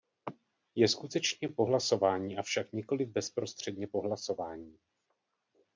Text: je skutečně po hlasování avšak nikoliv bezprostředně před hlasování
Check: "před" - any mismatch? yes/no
yes